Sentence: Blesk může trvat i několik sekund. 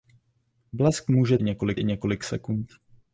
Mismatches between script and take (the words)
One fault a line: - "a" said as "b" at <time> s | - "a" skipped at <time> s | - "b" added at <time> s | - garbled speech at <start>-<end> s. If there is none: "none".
- "trvat" said as "několik" at 1.4 s